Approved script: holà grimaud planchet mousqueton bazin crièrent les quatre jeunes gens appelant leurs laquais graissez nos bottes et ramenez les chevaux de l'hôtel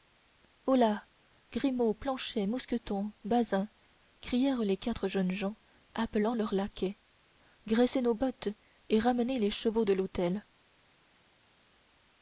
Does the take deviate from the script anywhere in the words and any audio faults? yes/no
no